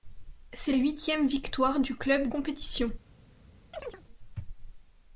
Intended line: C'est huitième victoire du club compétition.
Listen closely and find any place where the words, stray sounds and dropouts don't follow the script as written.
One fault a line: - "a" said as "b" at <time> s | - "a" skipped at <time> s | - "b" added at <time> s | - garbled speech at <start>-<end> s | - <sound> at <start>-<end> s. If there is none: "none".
- chirp at 3.7-4.0 s